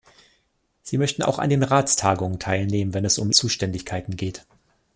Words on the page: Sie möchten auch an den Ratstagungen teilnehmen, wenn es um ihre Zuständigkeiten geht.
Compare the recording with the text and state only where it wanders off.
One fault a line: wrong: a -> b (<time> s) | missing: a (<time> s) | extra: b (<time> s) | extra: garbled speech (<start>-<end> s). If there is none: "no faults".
missing: ihre (3.3 s)